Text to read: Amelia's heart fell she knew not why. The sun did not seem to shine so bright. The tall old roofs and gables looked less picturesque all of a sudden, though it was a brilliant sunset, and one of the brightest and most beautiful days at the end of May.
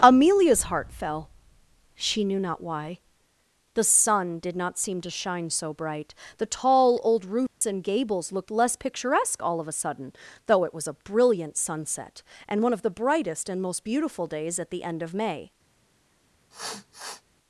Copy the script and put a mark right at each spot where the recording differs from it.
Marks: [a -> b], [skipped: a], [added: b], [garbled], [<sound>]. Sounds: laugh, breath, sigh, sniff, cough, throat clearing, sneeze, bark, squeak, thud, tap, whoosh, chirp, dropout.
Amelia's heart fell she knew not why. The sun did not seem to shine so bright. The tall old roofs [dropout] and gables looked less picturesque all of a sudden, though it was a brilliant sunset, and one of the brightest and most beautiful days at the end of May. [sniff]